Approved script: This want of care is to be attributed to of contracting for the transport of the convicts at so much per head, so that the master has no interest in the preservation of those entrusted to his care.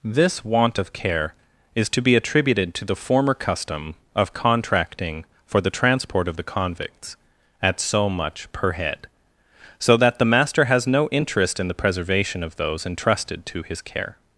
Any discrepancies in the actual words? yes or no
yes